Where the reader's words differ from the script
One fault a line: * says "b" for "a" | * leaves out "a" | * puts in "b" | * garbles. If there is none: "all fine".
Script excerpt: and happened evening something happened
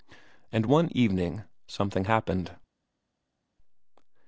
* says "one" for "happened"